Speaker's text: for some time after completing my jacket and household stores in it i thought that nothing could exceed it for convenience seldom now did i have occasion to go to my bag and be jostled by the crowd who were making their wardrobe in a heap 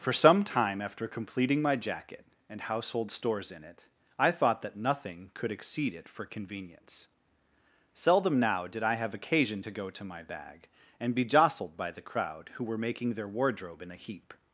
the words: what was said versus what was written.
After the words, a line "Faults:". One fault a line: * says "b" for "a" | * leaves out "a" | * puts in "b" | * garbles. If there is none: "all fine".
for some time after completing my jacket and household stores in it i thought that nothing could exceed it for convenience seldom now did i have occasion to go to my bag and be jostled by the crowd who were making their wardrobe in a heap
Faults:
all fine